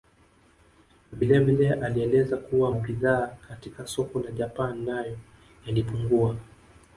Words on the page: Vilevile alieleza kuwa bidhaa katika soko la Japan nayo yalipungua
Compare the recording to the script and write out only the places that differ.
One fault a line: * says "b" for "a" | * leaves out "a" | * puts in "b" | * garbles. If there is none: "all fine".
all fine